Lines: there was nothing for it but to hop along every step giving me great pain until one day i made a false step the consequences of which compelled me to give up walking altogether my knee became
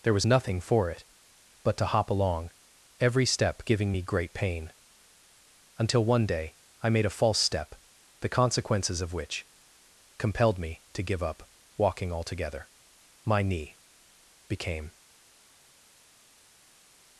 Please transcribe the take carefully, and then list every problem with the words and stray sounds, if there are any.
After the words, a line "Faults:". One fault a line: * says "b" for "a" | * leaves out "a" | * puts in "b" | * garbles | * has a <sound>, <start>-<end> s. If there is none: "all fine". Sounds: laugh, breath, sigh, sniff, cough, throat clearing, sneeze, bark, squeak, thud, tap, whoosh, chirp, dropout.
there was nothing for it but to hop along every step giving me great pain until one day i made a false step the consequences of which compelled me to give up walking altogether my knee became
Faults:
all fine